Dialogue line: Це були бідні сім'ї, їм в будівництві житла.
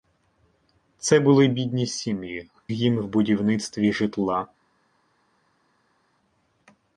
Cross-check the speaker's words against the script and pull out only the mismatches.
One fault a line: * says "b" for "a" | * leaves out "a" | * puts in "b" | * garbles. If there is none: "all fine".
all fine